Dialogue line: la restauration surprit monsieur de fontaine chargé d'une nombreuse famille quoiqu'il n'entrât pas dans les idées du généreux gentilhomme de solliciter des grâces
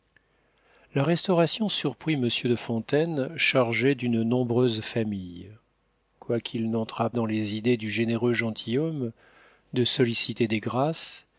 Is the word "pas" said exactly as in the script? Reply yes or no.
no